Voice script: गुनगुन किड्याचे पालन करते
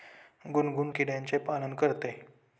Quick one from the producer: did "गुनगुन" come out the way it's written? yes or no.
yes